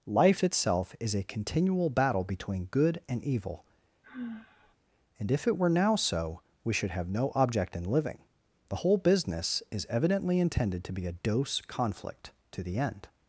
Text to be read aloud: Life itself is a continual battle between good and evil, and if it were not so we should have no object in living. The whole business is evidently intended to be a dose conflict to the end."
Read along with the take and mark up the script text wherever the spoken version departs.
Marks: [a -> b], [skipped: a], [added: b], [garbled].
Life itself is a continual battle between good and evil, and if it were [not -> now] so we should have no object in living. The whole business is evidently intended to be a dose conflict to the end."